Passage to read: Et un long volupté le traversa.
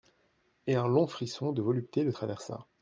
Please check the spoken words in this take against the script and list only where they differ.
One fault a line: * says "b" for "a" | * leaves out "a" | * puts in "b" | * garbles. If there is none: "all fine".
* puts in "frisson de"